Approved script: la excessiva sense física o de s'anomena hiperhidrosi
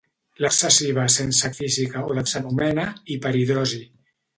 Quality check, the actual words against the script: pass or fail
pass